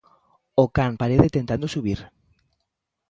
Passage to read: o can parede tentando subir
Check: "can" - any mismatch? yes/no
no